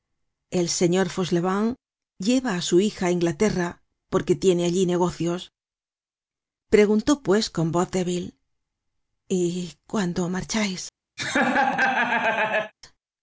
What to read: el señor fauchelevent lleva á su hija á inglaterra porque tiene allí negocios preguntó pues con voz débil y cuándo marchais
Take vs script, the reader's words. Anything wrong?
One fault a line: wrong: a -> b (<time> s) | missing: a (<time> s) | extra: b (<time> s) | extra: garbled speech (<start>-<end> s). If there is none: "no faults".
no faults